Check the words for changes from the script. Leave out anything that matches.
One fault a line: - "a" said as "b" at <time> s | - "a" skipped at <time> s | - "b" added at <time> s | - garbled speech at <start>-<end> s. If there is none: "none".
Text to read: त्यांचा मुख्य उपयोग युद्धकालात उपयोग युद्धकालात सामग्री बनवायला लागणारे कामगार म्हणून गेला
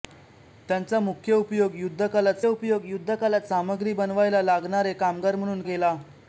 none